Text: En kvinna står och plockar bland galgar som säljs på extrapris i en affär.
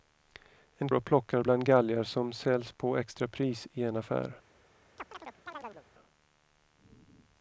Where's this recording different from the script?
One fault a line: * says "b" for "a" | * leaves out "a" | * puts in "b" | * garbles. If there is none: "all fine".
* leaves out "kvinna står"